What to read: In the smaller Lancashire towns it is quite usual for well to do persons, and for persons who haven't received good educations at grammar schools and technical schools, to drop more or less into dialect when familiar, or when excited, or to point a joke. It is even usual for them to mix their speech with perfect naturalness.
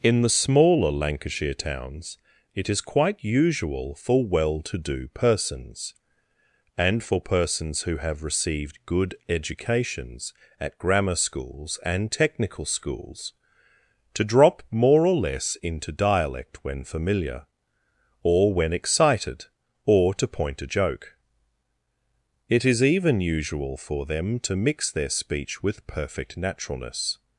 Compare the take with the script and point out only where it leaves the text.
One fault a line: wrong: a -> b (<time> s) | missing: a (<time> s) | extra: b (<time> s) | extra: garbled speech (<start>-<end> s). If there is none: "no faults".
wrong: haven't -> have (8.0 s)